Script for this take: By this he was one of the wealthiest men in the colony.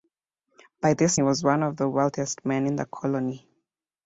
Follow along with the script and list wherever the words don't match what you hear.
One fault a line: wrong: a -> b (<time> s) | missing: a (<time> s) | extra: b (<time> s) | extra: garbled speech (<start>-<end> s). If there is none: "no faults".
no faults